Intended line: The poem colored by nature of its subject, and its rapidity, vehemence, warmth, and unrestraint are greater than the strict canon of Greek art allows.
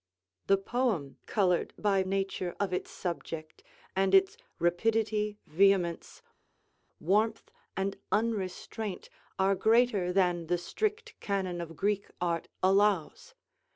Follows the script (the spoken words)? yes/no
yes